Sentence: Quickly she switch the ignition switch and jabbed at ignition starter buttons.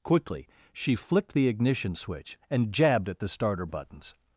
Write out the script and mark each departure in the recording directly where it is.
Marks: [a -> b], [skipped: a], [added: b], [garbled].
Quickly she [switch -> flicked] the ignition switch and jabbed at [ignition -> the] starter buttons.